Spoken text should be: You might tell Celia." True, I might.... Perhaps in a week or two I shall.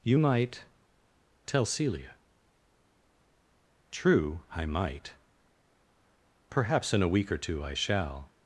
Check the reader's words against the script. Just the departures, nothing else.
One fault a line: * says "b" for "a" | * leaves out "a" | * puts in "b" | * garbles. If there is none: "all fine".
all fine